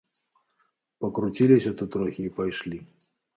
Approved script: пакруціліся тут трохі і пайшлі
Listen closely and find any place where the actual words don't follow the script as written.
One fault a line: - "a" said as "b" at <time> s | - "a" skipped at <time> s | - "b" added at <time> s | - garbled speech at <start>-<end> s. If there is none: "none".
none